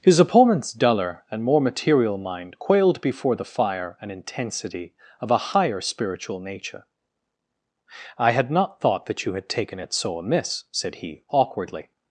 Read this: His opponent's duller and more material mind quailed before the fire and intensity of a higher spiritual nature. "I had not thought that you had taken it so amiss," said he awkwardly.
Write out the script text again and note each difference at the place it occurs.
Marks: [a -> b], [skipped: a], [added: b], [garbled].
His opponent's duller and more material mind quailed before the fire and intensity of a higher spiritual nature. "I had not thought that you had taken it so amiss," said he awkwardly.